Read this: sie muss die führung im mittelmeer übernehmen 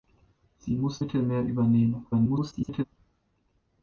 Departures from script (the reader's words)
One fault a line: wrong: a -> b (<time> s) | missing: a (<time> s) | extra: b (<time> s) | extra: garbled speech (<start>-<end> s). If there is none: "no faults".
missing: die führung im (1.0 s)
extra: garbled speech (2.1-2.8 s)